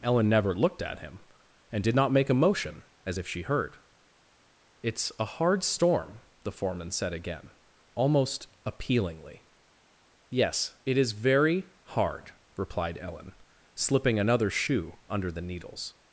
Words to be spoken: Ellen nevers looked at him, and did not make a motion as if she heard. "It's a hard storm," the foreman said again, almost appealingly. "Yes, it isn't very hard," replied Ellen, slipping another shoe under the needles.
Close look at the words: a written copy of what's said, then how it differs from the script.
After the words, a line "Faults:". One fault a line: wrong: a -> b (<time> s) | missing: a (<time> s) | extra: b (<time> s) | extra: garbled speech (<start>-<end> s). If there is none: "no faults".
Ellen never looked at him, and did not make a motion as if she heard. "It's a hard storm," the foreman said again, almost appealingly. "Yes, it is very hard," replied Ellen, slipping another shoe under the needles.
Faults:
wrong: nevers -> never (0.3 s)
wrong: isn't -> is (11.0 s)